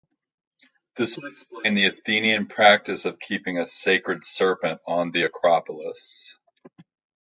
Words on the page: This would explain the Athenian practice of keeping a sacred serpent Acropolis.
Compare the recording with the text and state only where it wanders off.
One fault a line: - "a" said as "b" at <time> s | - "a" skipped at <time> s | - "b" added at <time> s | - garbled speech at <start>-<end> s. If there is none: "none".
- "on the" added at 4.9 s